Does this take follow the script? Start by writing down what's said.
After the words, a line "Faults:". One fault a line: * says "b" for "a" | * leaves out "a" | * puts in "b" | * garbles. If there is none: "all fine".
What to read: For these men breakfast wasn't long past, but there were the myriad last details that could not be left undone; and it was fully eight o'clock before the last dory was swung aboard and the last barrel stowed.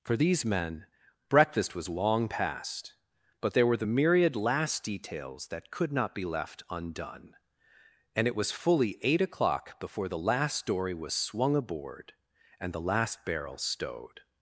For these men breakfast was long past, but there were the myriad last details that could not be left undone; and it was fully eight o'clock before the last dory was swung aboard and the last barrel stowed.
Faults:
* says "was" for "wasn't"